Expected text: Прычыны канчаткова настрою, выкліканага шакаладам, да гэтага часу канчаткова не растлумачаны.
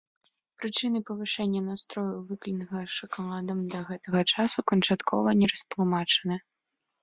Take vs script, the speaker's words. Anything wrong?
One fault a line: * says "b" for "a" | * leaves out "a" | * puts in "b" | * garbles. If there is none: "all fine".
* says "павышэння" for "канчаткова"